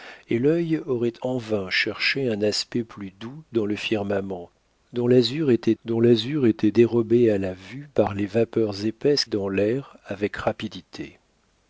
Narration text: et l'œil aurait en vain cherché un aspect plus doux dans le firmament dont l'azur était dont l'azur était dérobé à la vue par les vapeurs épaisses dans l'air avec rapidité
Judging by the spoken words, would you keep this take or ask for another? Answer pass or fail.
pass